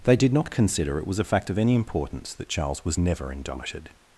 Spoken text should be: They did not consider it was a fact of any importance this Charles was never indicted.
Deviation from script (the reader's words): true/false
true